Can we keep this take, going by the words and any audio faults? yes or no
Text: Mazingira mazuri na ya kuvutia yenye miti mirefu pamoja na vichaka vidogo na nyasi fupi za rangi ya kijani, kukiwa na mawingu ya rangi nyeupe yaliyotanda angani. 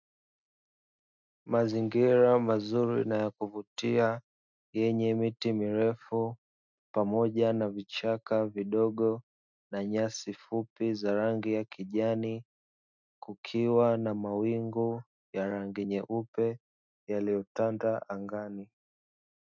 yes